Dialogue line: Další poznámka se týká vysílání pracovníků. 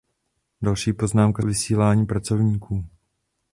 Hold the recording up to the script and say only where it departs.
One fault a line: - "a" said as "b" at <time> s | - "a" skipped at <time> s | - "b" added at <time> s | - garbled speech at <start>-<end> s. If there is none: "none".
- "se týká" skipped at 1.4 s